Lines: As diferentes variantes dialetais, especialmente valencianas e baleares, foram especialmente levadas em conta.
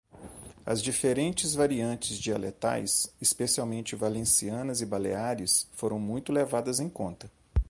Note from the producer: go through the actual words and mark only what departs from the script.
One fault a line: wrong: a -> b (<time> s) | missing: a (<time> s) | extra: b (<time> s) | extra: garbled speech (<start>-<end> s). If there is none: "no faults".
wrong: especialmente -> muito (6.0 s)